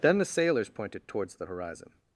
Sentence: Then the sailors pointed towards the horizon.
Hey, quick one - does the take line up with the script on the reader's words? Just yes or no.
yes